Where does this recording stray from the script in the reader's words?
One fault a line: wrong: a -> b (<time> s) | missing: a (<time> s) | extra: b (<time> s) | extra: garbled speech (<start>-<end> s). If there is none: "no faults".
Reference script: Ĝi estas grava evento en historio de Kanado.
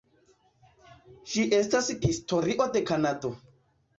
missing: grava evento en (1.9 s)